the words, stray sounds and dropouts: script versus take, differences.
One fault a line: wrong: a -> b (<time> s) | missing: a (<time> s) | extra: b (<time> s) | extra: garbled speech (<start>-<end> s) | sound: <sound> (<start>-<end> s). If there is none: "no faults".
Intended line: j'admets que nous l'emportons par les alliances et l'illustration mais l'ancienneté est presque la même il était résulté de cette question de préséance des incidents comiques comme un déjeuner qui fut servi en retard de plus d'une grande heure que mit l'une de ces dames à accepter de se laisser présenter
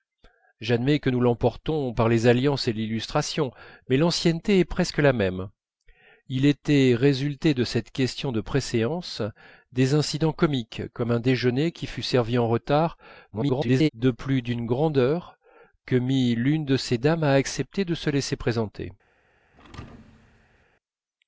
extra: garbled speech (13.3-13.9 s)
sound: thud (19.5-20.7 s)